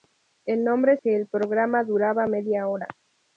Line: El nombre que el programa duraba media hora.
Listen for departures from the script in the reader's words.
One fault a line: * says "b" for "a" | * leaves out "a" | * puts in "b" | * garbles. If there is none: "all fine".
all fine